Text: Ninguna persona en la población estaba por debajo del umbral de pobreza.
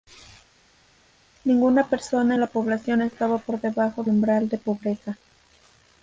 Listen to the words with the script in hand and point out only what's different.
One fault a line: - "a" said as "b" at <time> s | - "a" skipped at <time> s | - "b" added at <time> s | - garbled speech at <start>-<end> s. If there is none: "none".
- "del" skipped at 4.0 s